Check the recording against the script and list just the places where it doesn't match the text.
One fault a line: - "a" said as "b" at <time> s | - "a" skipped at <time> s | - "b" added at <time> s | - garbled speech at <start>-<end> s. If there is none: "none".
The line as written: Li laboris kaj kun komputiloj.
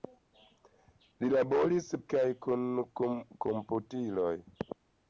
none